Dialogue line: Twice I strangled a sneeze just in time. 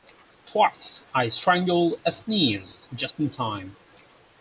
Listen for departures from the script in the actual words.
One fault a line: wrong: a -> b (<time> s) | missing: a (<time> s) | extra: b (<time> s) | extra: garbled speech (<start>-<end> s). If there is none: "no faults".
no faults